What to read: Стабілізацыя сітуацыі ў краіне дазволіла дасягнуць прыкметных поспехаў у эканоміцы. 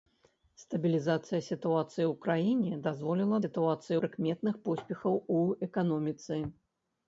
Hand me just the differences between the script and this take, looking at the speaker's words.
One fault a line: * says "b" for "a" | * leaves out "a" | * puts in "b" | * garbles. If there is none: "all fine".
* says "сітуацыі" for "дасягнуць"